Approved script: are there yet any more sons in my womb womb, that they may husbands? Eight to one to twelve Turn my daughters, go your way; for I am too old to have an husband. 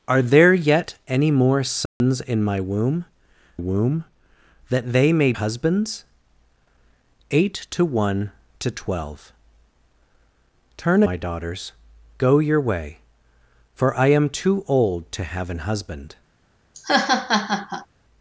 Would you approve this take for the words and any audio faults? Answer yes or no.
no